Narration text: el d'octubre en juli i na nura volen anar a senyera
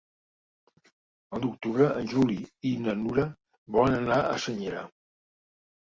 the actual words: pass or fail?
pass